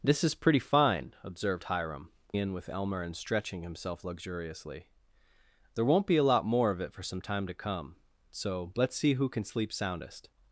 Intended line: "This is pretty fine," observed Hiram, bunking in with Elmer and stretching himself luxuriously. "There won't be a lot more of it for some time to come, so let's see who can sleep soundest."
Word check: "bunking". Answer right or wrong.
wrong